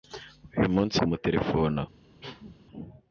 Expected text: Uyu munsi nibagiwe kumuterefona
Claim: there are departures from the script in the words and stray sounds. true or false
true